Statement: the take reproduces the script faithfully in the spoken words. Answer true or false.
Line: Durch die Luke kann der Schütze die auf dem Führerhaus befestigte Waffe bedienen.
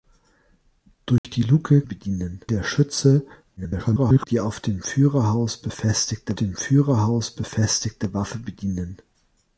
false